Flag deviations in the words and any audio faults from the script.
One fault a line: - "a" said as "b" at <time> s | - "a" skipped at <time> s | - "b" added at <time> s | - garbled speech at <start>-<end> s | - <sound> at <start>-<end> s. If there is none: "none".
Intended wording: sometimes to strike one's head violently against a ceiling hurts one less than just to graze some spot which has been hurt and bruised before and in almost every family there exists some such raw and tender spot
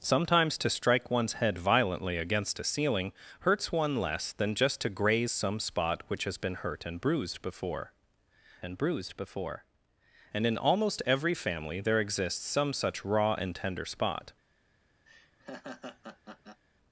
- "bruised before and" added at 8.8 s
- laugh at 15.1-16.6 s